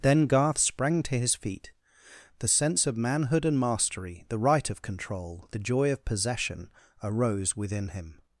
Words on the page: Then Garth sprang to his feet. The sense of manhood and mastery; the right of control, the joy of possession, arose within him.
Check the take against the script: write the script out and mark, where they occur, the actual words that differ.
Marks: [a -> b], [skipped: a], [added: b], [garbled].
Then Garth sprang to his feet. The sense of manhood and mastery; the right of control, the joy of possession, arose within him.